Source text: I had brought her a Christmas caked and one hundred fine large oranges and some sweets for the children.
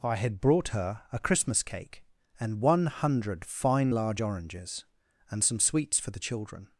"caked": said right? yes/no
no